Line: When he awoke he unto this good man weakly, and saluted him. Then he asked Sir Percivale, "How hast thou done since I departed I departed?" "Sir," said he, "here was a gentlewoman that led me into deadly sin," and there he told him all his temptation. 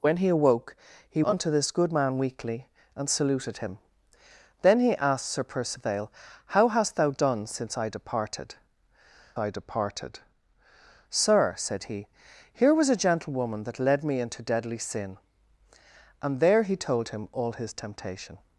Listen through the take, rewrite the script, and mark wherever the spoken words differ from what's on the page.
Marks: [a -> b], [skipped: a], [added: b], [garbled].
When he awoke he unto this good man weakly, and saluted him. Then he asked Sir Percivale, "How hast thou done since I departed I departed?" "Sir," said he, "here was a gentlewoman that led me into deadly sin," and there he told him all his temptation.